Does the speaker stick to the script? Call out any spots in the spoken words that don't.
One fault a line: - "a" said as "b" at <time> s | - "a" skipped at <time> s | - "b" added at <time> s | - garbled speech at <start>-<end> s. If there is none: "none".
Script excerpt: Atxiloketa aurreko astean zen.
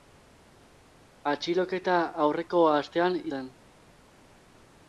none